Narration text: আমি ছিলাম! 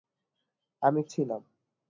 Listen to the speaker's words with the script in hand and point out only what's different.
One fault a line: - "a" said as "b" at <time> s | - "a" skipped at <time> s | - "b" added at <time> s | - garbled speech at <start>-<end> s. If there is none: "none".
none